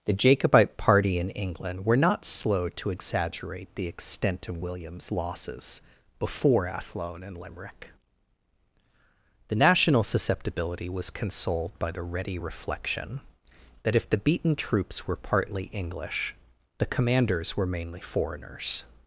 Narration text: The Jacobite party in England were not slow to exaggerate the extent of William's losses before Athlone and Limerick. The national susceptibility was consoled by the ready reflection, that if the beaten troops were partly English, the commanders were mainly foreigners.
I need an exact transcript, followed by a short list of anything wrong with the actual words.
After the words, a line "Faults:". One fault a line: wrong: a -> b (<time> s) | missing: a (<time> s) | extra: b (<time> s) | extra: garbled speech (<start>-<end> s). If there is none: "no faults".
The Jacobite party in England were not slow to exaggerate the extent of William's losses before Athlone and Limerick. The national susceptibility was consoled by the ready reflection, that if the beaten troops were partly English, the commanders were mainly foreigners.
Faults:
no faults